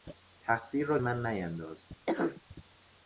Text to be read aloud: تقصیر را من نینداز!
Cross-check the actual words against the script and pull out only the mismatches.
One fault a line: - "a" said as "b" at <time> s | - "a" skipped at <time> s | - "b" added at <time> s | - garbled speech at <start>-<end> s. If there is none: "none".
none